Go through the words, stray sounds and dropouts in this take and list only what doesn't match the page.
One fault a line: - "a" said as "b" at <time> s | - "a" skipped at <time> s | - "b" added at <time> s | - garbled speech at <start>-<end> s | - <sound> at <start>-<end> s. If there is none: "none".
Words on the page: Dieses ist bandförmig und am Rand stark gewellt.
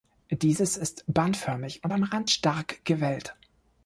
none